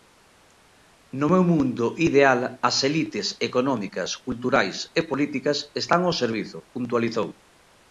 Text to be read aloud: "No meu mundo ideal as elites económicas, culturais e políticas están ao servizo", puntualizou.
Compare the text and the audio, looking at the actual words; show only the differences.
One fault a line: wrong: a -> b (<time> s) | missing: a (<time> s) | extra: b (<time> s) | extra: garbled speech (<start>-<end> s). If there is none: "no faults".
no faults